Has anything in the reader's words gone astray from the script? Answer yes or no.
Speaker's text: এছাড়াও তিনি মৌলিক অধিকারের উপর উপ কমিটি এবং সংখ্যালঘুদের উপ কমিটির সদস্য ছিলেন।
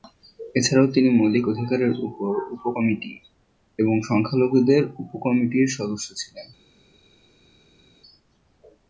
no